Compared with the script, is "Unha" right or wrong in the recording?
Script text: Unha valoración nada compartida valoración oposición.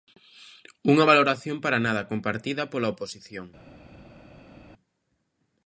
right